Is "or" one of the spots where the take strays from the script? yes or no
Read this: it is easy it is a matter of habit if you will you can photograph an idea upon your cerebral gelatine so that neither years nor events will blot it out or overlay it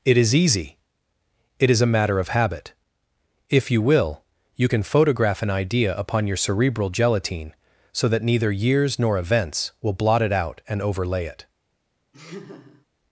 yes